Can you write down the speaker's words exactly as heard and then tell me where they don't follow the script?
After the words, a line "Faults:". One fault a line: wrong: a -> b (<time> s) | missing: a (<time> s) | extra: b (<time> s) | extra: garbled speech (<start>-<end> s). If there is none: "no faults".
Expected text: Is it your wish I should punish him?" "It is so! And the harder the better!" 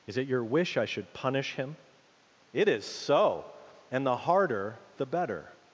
Is it your wish I should punish him?" "It is so! And the harder the better!"
Faults:
no faults